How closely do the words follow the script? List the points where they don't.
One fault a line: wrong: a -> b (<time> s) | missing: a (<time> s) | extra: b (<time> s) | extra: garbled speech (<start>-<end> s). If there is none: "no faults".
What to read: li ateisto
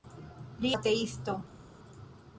no faults